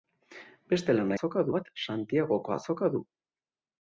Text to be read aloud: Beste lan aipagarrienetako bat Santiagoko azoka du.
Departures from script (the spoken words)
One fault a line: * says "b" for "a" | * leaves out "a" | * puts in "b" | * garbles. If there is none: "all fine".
* says "azoka" for "aipagarrienetako"